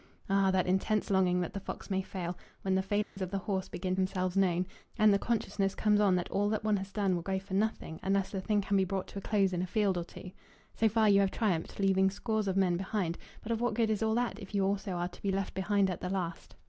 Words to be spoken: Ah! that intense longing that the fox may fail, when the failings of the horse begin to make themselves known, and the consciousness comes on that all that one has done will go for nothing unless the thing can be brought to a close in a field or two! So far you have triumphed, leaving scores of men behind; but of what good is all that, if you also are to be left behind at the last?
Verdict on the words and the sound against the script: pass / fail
fail